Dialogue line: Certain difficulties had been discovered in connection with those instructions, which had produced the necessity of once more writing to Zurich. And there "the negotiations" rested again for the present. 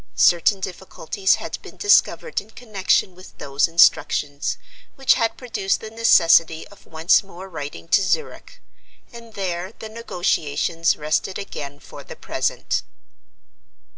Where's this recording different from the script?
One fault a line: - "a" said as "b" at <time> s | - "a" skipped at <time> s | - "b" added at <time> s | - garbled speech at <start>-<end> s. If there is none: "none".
none